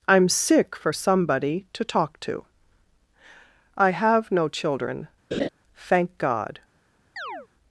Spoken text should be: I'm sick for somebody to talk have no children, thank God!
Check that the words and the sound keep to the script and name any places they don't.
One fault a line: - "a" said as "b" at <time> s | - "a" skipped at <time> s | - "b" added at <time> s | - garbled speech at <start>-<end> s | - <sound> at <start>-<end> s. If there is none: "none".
- "to I" added at 2.2 s
- laugh at 5.3-5.5 s
- chirp at 7.2-7.5 s